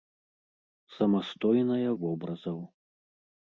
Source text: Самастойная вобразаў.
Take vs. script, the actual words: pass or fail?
pass